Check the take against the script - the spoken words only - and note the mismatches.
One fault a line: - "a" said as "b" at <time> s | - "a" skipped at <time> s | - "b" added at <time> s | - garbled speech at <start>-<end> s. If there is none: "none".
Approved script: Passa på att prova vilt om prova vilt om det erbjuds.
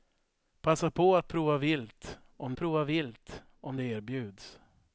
none